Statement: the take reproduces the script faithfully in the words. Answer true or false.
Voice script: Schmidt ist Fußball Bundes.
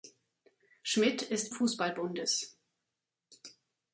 true